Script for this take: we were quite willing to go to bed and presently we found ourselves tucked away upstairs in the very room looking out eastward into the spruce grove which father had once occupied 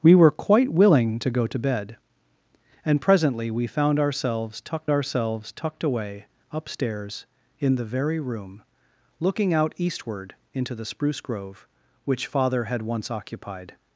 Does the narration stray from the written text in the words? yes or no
yes